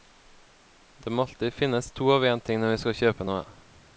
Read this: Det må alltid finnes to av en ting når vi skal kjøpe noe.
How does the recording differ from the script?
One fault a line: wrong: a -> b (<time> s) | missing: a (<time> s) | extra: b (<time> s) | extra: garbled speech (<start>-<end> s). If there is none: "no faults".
no faults